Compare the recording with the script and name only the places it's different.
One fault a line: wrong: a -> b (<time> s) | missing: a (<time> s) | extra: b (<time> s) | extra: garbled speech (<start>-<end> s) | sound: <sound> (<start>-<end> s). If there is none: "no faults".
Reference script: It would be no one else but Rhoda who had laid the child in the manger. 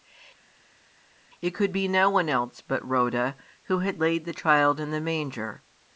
wrong: would -> could (1.5 s)